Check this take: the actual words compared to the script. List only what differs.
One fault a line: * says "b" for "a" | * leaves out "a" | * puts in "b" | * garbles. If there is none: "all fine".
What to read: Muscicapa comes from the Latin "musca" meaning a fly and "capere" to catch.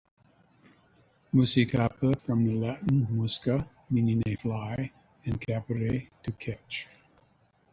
* leaves out "comes"